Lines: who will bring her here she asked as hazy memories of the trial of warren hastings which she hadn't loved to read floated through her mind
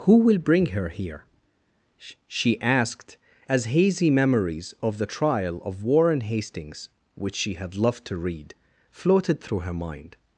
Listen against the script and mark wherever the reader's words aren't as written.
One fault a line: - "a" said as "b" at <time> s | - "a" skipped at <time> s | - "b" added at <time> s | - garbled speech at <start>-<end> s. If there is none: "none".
- "hadn't" said as "had" at 7.5 s